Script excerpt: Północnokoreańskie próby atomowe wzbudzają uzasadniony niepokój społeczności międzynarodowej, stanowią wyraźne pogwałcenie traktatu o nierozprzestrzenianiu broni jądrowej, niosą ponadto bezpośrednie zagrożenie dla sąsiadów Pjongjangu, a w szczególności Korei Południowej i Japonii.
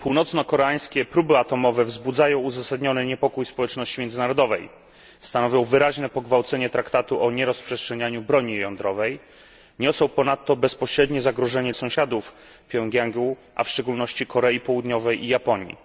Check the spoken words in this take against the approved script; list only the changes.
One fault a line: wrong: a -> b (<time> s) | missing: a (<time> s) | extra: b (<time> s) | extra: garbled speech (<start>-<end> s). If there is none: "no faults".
missing: dla (11.7 s)